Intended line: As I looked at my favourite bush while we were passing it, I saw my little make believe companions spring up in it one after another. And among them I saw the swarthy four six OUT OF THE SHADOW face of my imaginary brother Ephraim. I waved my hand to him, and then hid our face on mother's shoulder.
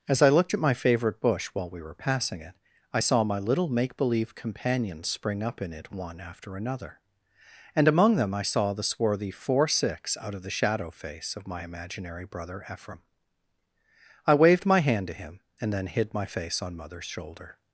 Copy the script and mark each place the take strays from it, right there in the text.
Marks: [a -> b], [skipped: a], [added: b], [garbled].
As I looked at my favourite bush while we were passing it, I saw my little make believe companions spring up in it one after another. And among them I saw the swarthy four six OUT OF THE SHADOW face of my imaginary brother Ephraim. I waved my hand to him, and then hid [our -> my] face on mother's shoulder.